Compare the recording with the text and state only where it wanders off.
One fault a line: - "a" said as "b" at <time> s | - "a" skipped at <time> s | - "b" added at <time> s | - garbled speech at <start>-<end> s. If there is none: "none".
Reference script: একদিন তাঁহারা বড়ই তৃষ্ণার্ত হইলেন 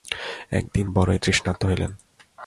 - "তাঁহারা" skipped at 0.8 s